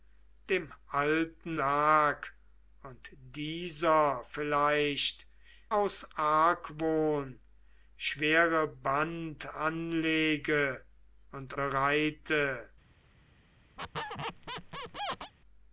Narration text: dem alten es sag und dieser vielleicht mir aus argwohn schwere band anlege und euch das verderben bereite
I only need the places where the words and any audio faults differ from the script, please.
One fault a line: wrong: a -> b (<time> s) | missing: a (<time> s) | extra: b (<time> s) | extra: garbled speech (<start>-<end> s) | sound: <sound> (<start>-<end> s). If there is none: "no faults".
missing: es (1.6 s)
missing: mir (5.3 s)
missing: euch das verderben (11.5 s)
sound: squeak (13.8-15.3 s)